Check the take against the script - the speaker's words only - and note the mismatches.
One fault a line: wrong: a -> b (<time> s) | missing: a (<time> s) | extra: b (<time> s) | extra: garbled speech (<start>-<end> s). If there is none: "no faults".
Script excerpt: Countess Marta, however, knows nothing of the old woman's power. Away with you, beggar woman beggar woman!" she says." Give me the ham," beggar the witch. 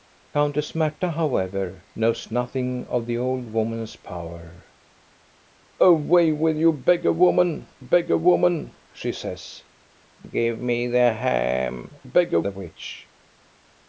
no faults